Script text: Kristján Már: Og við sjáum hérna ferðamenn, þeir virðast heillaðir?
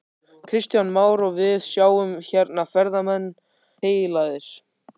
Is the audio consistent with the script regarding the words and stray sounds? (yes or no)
no